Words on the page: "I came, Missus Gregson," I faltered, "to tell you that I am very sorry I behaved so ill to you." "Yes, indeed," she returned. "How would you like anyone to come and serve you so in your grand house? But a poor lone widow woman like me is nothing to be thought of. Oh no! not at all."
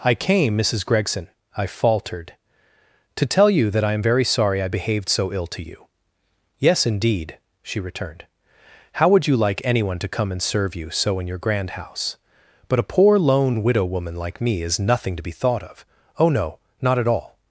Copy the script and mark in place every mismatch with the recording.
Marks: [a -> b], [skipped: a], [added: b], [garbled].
"I came, Missus Gregson," I faltered, "to tell you that I am very sorry I behaved so ill to you." "Yes, indeed," she returned. "How would you like anyone to come and serve you so in your grand house? But a poor lone widow woman like me is nothing to be thought of. Oh no! not at all."